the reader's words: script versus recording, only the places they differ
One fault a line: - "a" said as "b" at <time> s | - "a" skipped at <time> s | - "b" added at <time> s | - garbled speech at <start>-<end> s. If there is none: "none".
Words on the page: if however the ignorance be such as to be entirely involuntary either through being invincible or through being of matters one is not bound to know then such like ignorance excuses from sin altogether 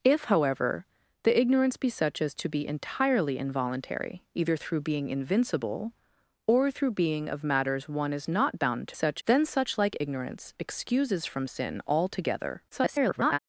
- "know" said as "such" at 8.9 s
- garbled speech at 12.7-13.4 s